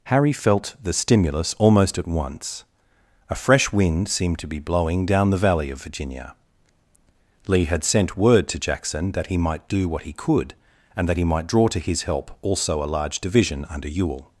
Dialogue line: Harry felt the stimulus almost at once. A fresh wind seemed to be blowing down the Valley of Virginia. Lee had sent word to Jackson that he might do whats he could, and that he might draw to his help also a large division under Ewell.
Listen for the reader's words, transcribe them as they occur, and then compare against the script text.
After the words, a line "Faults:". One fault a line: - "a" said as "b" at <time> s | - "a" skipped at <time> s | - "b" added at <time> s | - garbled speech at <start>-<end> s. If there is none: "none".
Harry felt the stimulus almost at once. A fresh wind seemed to be blowing down the Valley of Virginia. Lee had sent word to Jackson that he might do what he could, and that he might draw to his help also a large division under Ewell.
Faults:
- "whats" said as "what" at 9.9 s